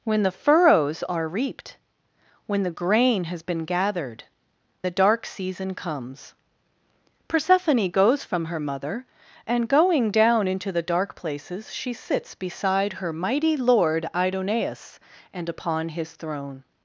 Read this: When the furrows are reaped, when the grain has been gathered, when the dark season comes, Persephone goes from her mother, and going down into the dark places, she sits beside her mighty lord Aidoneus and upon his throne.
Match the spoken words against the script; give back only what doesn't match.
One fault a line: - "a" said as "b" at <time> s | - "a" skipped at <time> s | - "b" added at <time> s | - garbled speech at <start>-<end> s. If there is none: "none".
- "when" skipped at 4.2 s